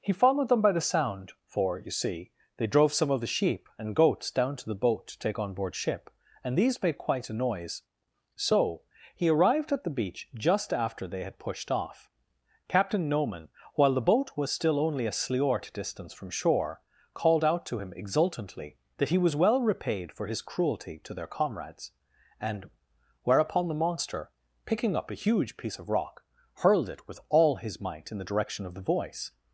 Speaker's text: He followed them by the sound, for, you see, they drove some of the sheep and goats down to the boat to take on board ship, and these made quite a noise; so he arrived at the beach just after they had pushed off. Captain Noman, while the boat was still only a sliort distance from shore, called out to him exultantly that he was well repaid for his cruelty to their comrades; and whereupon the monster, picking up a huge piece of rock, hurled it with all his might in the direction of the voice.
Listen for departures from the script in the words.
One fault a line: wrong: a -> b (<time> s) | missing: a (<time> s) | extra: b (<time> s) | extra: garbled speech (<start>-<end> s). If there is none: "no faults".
no faults